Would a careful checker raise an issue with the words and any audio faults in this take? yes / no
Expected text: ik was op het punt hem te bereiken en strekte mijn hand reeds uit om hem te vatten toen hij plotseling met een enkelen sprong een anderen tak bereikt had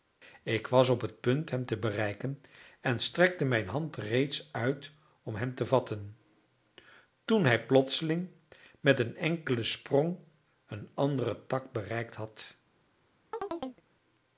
yes